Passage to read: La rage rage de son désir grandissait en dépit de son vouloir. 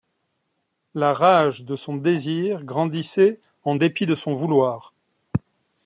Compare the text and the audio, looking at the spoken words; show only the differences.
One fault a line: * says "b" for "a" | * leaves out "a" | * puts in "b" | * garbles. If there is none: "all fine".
* leaves out "rage"